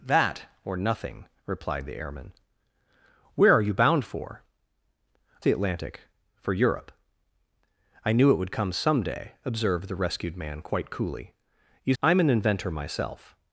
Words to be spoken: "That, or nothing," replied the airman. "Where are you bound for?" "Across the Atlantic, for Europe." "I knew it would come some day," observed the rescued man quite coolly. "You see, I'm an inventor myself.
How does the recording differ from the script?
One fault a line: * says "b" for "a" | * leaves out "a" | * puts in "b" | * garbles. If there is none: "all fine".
* leaves out "Across"
* leaves out "see"